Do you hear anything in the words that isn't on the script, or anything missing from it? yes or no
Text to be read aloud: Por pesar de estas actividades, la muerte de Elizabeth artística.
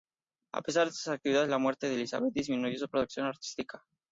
yes